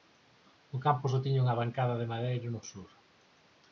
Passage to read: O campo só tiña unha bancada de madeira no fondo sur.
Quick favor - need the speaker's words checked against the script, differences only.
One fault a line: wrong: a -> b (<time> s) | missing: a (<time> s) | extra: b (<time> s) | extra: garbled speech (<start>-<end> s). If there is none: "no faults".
missing: fondo (2.6 s)